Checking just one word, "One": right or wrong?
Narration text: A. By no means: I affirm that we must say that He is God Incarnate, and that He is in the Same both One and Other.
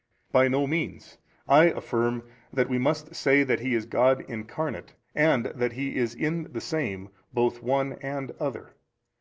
right